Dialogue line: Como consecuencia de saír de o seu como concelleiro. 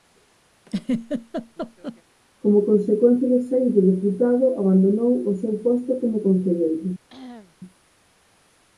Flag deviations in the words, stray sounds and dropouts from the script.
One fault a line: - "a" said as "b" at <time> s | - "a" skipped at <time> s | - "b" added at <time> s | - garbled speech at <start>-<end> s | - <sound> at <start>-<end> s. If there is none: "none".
- laugh at 0.7-2.0 s
- "deputado abandonou" added at 3.8 s
- "posto" added at 5.6 s
- cough at 7.1-7.6 s